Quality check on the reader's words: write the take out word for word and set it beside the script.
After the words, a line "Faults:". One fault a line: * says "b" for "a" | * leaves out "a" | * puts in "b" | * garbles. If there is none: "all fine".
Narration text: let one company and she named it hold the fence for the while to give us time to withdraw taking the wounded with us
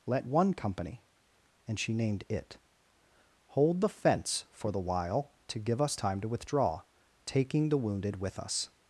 let one company and she named it hold the fence for the while to give us time to withdraw taking the wounded with us
Faults:
all fine